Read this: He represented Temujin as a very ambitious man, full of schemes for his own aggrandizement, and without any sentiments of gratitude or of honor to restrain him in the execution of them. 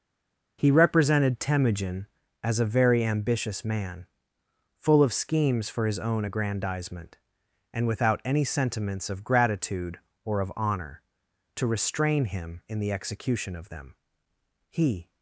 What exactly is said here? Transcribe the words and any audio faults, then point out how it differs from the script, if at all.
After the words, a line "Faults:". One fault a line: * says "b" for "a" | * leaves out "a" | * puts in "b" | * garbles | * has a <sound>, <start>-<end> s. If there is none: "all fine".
He represented Temujin as a very ambitious man, full of schemes for his own aggrandizement, and without any sentiments of gratitude or of honor to restrain him in the execution of them. He
Faults:
* puts in "He"